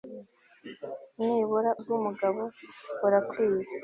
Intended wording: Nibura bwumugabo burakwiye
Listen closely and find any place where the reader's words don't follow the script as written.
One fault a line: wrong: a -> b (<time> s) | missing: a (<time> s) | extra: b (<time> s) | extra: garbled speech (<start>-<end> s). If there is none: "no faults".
no faults